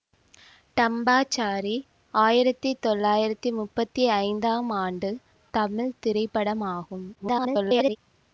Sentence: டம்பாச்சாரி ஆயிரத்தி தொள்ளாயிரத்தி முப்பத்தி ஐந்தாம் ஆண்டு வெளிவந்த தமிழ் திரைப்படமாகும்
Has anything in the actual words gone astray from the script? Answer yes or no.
yes